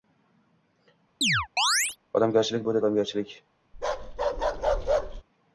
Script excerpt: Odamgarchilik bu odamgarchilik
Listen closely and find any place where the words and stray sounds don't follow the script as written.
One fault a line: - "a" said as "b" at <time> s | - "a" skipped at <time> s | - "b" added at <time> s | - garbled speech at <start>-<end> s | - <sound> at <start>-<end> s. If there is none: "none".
- chirp at 1.2-2.0 s
- bark at 3.7-5.2 s